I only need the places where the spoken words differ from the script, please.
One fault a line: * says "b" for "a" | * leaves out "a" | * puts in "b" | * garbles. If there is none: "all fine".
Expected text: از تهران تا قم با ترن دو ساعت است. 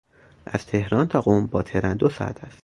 all fine